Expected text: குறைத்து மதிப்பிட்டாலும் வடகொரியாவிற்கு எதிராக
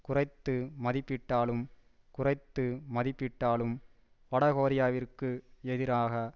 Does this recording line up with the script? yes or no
no